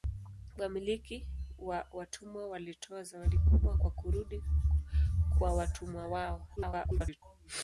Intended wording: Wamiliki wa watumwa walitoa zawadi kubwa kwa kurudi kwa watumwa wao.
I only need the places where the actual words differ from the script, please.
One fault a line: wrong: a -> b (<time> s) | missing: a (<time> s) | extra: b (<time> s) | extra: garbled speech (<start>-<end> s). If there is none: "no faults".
extra: garbled speech (6.6-7.2 s)